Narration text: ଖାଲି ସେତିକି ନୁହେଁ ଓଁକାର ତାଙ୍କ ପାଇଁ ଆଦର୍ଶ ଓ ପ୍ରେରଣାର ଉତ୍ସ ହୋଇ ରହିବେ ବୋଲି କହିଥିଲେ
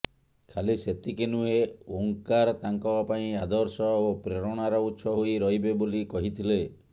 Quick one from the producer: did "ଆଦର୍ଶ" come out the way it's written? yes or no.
yes